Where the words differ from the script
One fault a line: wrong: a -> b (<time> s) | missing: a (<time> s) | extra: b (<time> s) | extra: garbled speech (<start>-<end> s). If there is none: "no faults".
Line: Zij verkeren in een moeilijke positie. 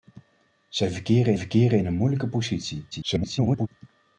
extra: verkeren (1.3 s)
extra: garbled speech (2.9-3.7 s)